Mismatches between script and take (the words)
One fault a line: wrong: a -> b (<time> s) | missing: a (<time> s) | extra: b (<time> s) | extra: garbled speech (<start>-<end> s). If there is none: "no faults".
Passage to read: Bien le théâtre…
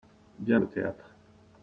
no faults